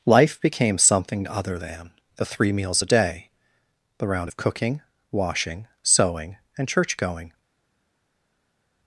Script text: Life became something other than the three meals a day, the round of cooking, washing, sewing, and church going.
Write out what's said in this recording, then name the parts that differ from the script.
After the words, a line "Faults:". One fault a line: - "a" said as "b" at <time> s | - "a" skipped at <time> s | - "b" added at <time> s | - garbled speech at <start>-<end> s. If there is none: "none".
Life became something other than the three meals a day, the round of cooking, washing, sewing, and church going.
Faults:
none